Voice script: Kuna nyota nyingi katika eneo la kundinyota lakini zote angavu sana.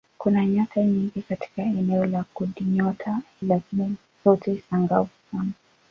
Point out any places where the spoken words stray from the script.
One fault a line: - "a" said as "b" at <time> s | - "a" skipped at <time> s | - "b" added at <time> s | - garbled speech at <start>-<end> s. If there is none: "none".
none